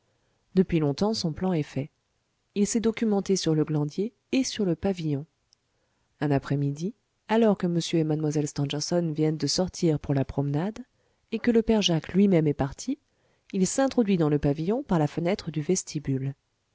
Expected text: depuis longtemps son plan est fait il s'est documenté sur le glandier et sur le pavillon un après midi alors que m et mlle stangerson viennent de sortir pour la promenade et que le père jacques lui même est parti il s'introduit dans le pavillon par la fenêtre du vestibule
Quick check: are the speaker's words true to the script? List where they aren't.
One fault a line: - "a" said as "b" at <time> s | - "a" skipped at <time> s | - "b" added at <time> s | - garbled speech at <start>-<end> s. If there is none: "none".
none